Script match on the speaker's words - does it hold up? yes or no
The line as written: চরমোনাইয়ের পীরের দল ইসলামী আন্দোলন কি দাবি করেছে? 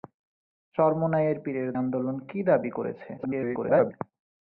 no